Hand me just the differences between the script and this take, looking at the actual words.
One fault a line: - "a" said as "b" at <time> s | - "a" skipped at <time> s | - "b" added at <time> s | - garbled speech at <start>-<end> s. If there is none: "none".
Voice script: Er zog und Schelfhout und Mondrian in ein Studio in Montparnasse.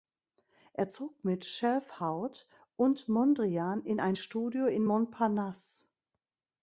- "und" said as "mit" at 1.3 s